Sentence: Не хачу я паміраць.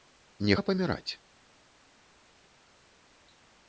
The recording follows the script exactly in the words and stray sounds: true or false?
false